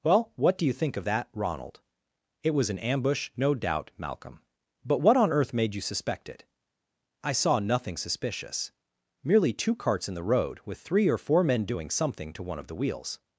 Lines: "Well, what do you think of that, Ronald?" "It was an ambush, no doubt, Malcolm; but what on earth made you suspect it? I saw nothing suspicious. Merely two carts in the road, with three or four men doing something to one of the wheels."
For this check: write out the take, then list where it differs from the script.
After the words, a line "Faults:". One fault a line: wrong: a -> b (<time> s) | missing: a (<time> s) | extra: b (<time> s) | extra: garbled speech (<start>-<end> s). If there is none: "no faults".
"Well, what do you think of that, Ronald?" "It was an ambush, no doubt, Malcolm; but what on earth made you suspect it? I saw nothing suspicious. Merely two carts in the road, with three or four men doing something to one of the wheels."
Faults:
no faults